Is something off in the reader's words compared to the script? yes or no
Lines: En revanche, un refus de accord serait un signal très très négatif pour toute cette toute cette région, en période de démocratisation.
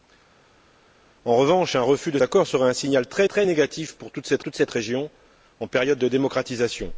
no